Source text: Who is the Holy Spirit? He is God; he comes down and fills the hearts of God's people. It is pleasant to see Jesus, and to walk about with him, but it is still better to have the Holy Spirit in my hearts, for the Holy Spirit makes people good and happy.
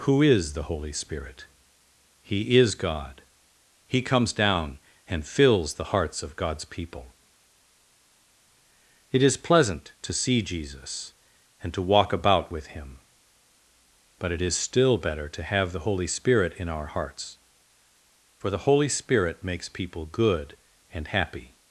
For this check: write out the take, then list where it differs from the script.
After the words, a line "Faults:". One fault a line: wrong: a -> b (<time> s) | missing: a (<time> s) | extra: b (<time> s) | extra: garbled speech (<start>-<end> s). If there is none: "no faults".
Who is the Holy Spirit? He is God; he comes down and fills the hearts of God's people. It is pleasant to see Jesus, and to walk about with him, but it is still better to have the Holy Spirit in our hearts, for the Holy Spirit makes people good and happy.
Faults:
wrong: my -> our (16.7 s)